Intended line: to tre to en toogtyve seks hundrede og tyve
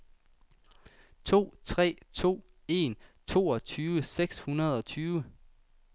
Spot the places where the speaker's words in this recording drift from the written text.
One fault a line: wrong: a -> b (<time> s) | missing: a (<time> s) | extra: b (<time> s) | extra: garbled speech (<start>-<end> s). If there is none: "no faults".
no faults